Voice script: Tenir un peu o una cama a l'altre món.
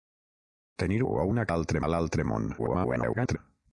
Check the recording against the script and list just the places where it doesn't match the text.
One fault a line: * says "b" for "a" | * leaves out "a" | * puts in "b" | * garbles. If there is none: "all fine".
* leaves out "un peu"
* says "l'altre" for "cama"
* garbles